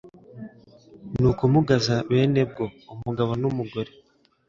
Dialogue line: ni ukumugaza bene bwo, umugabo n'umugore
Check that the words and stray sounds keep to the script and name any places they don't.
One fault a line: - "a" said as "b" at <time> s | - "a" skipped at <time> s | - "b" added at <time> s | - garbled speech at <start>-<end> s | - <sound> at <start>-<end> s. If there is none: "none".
none